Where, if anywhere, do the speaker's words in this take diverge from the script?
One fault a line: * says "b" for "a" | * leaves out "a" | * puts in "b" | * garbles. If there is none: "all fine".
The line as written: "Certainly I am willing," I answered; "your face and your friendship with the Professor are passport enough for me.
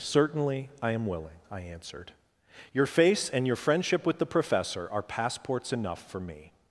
* says "passports" for "passport"